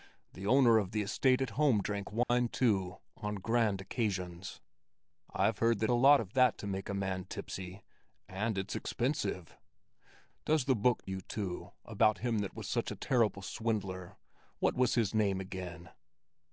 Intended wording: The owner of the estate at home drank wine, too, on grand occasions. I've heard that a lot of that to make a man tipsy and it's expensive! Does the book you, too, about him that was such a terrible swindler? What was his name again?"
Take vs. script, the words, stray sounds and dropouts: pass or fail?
fail